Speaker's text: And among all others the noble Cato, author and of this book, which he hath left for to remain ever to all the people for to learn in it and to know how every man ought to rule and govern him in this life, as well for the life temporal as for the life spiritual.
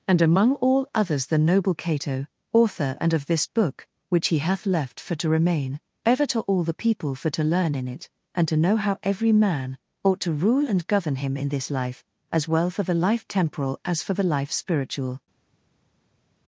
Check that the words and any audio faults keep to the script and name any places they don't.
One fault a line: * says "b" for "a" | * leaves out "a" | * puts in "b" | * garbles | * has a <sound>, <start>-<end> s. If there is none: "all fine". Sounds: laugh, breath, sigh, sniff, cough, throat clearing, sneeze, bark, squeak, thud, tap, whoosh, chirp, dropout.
all fine